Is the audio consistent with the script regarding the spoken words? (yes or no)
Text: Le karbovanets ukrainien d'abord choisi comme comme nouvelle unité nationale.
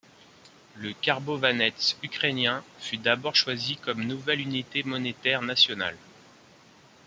no